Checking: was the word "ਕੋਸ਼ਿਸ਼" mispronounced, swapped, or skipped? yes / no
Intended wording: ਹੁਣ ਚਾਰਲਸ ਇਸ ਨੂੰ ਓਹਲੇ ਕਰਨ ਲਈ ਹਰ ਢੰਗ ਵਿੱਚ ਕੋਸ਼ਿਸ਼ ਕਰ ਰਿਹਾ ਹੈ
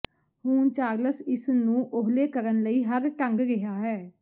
yes